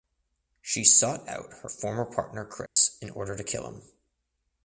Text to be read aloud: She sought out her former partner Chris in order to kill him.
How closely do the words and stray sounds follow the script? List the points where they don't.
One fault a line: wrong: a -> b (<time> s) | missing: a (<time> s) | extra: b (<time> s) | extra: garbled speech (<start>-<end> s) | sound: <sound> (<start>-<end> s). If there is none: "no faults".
sound: dropout (2.7-2.8 s)